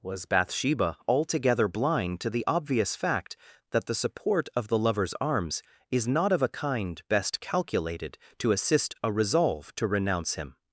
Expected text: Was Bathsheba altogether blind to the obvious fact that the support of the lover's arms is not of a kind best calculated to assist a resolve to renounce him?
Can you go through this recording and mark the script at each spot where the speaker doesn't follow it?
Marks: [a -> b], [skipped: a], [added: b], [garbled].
Was Bathsheba altogether blind to the obvious fact that the support of the lover's arms is not of a kind best calculated to assist a resolve to renounce him?